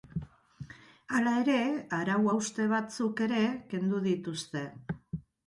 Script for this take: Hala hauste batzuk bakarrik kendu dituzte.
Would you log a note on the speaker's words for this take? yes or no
yes